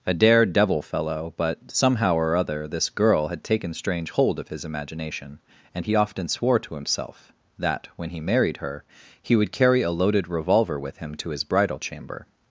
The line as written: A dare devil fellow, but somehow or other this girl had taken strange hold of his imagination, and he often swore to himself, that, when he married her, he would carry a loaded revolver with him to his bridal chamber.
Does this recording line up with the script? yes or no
yes